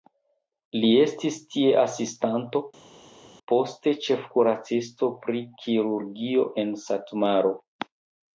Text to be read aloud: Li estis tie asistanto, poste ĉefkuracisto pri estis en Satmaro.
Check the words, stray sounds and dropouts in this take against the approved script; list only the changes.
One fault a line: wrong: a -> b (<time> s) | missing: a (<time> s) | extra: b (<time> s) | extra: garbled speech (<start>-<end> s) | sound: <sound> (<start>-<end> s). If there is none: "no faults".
wrong: estis -> kirurgio (5.6 s)